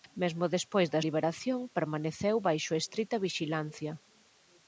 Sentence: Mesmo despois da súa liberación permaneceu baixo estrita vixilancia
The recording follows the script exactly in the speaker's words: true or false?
false